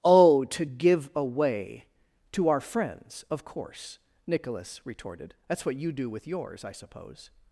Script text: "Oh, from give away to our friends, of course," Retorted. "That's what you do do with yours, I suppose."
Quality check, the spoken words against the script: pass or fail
fail